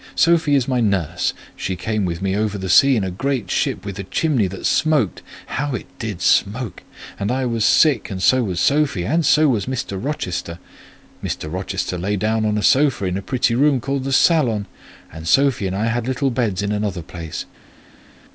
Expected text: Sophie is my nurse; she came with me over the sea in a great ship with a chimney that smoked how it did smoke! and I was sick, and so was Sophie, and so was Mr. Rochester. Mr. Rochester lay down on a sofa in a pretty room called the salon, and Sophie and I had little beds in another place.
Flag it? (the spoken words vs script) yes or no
no